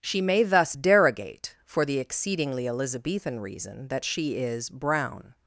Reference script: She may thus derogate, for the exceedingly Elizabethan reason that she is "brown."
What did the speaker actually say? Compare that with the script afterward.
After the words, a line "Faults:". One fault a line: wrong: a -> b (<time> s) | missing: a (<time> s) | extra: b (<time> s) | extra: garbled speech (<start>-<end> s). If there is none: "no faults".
She may thus derogate, for the exceedingly Elizabethan reason that she is "brown."
Faults:
no faults